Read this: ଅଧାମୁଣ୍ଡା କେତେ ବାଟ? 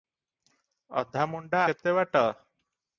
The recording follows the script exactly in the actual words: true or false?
true